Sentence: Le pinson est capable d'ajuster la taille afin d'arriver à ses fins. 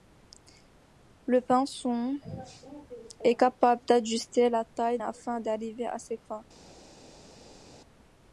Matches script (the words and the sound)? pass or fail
pass